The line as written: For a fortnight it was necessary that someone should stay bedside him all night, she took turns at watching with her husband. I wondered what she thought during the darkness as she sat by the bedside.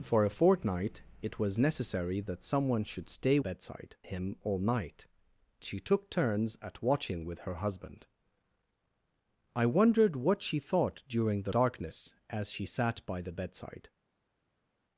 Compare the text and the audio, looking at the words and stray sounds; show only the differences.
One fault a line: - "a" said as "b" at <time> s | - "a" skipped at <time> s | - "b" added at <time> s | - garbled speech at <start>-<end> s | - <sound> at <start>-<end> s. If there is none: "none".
none